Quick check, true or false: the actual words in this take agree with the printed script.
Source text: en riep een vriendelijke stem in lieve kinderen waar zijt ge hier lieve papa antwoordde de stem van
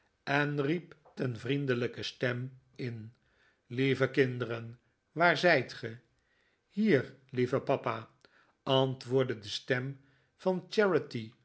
true